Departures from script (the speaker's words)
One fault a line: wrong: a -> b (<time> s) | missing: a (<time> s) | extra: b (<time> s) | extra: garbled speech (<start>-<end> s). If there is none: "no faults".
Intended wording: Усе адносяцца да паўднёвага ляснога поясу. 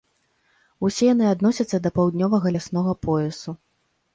extra: яны (1.1 s)